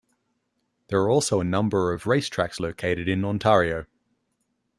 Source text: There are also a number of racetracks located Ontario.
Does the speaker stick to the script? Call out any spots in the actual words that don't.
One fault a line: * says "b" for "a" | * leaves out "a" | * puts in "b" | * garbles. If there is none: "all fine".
* puts in "in"